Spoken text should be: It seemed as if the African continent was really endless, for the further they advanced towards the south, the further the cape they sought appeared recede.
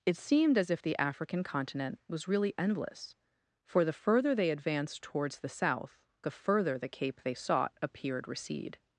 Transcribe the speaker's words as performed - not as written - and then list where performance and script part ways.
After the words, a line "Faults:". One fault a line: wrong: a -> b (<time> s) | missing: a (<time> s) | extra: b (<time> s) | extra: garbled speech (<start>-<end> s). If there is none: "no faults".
It seemed as if the African continent was really endless, for the further they advanced towards the south, the further the cape they sought appeared recede.
Faults:
no faults